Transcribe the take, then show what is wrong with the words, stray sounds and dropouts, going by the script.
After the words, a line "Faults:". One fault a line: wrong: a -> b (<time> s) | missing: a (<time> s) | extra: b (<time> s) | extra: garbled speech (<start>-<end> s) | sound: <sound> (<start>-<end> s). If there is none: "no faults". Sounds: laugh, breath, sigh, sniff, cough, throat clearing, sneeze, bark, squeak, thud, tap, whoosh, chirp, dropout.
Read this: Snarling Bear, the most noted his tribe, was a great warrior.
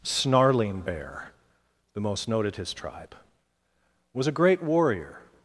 Snarling Bear, the most noted his tribe, was a great warrior.
Faults:
no faults